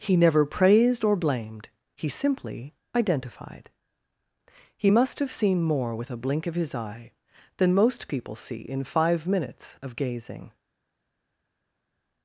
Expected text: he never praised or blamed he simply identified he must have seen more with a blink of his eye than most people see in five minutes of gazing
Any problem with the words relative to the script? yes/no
no